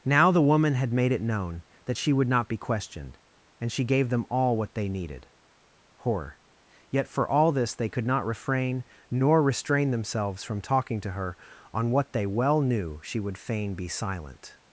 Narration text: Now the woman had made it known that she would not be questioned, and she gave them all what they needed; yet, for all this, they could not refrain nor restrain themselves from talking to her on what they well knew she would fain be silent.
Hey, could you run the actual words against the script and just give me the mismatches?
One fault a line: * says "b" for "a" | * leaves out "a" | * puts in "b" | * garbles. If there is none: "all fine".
* puts in "horror"